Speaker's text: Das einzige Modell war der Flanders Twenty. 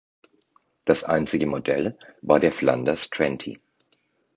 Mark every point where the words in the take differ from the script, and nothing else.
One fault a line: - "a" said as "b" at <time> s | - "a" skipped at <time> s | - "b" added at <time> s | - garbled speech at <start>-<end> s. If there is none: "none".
none